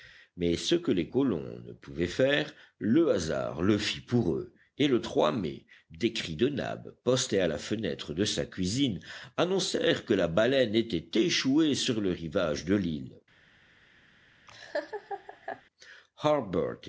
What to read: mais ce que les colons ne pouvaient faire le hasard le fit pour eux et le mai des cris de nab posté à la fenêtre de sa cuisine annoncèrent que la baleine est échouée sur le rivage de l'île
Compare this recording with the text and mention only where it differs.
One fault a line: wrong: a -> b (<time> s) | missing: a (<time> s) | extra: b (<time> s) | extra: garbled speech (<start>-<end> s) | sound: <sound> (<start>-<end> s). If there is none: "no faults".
wrong: est -> était (10.7 s)
sound: laugh (14.5-15.6 s)